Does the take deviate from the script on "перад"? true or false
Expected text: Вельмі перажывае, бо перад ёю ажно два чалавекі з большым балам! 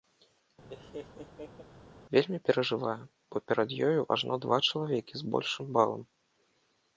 false